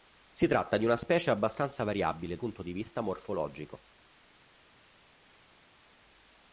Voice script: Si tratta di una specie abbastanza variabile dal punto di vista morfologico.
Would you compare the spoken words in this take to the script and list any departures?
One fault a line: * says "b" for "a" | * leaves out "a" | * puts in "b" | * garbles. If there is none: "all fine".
* leaves out "dal"